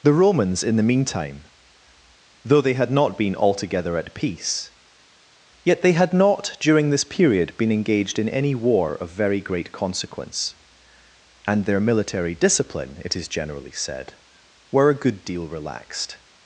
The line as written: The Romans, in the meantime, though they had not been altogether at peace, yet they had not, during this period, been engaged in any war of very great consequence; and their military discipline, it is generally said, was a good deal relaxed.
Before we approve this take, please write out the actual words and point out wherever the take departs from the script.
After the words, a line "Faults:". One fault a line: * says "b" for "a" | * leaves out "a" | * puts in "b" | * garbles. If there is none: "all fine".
The Romans, in the meantime, though they had not been altogether at peace, yet they had not, during this period, been engaged in any war of very great consequence; and their military discipline, it is generally said, were a good deal relaxed.
Faults:
* says "were" for "was"